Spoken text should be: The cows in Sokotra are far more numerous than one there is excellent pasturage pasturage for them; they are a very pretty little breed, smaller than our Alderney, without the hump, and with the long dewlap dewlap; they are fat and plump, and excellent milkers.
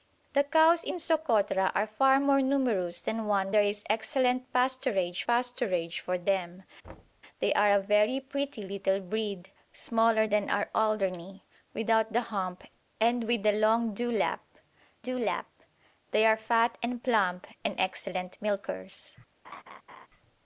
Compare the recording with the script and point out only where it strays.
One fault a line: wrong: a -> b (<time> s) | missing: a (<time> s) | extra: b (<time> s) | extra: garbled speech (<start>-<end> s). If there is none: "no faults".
no faults